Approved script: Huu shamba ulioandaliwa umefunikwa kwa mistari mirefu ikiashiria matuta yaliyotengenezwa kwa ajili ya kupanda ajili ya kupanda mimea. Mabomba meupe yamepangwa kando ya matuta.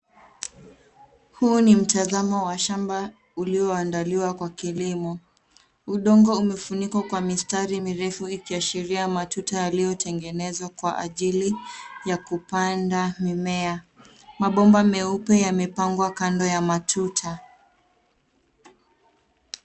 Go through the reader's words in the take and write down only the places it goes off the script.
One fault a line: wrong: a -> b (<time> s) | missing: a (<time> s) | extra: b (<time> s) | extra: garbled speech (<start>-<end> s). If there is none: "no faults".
extra: ni mtazamo wa (1.6 s)
extra: kwa kilimo Udongo (4.3 s)
missing: ajili ya kupanda (13.2 s)